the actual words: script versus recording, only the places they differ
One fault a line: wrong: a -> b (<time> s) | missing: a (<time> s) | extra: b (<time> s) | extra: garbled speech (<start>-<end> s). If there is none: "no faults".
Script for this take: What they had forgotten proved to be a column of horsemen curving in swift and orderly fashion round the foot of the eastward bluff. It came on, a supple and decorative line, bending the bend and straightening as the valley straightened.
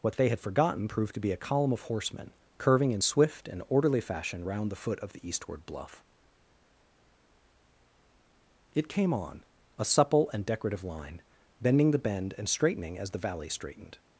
no faults